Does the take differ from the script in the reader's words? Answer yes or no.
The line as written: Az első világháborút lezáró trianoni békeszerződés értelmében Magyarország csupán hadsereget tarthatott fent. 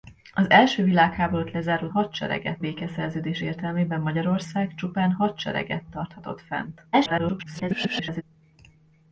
yes